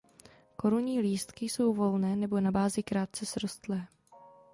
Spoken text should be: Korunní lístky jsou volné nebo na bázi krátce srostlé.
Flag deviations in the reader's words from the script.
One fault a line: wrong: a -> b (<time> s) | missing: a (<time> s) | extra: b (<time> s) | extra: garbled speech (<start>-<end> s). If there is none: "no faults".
no faults